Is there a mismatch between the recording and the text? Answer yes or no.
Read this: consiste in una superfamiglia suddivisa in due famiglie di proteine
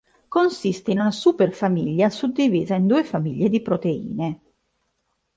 no